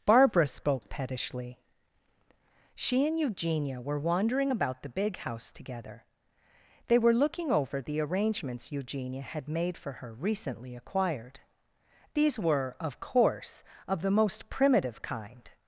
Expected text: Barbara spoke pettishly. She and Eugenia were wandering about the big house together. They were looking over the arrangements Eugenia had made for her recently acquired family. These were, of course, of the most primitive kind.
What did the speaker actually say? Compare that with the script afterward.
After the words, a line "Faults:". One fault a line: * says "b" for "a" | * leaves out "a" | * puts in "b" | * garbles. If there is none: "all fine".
Barbara spoke pettishly. She and Eugenia were wandering about the big house together. They were looking over the arrangements Eugenia had made for her recently acquired. These were, of course, of the most primitive kind.
Faults:
* leaves out "family"